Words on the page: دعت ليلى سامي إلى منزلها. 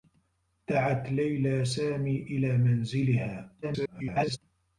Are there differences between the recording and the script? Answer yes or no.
yes